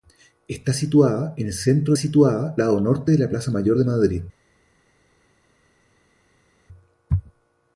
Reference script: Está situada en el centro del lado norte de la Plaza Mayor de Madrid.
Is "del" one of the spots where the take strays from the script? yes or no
yes